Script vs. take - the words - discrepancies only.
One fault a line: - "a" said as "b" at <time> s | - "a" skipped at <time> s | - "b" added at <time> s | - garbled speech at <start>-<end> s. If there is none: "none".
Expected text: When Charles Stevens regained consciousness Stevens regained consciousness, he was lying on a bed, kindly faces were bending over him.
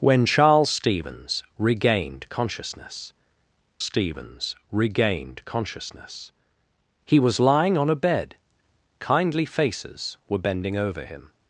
none